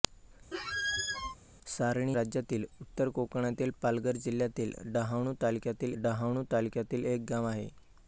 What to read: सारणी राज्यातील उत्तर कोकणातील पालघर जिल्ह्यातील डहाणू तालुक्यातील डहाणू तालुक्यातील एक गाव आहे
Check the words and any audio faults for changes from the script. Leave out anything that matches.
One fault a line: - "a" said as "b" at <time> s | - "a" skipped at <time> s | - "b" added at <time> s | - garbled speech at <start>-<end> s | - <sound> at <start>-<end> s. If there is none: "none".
- squeak at 0.5-1.4 s